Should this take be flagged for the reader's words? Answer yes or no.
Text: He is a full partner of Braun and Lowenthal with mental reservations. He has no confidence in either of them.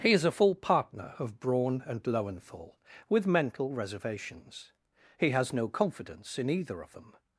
no